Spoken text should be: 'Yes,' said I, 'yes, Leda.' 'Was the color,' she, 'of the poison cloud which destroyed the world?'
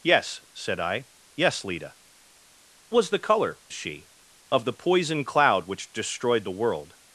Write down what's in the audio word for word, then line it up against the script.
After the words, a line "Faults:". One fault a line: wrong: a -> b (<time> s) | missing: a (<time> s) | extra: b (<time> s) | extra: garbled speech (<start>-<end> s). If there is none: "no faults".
'Yes,' said I, 'yes, Leda.' 'Was the color,' she, 'of the poison cloud which destroyed the world?'
Faults:
no faults